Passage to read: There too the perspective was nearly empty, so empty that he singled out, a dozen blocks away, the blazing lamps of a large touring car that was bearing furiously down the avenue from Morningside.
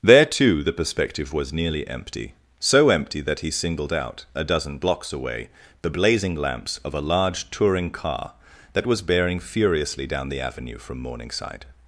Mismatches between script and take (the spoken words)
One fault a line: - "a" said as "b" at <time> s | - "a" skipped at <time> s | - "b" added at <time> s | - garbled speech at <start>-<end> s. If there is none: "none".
none